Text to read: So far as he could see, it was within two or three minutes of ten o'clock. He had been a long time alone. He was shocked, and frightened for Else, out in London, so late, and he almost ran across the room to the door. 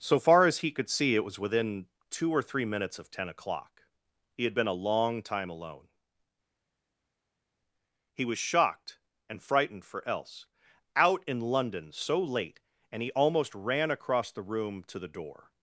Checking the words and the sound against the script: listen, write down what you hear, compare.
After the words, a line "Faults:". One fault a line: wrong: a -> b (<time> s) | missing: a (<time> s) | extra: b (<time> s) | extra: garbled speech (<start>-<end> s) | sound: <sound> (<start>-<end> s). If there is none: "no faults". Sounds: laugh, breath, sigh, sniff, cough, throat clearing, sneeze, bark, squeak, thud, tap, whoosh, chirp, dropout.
So far as he could see, it was within two or three minutes of ten o'clock. He had been a long time alone. He was shocked, and frightened for Else, out in London, so late, and he almost ran across the room to the door.
Faults:
no faults